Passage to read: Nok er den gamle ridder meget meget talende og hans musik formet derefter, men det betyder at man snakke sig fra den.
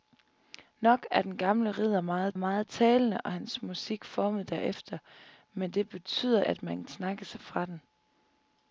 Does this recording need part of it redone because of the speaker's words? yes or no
no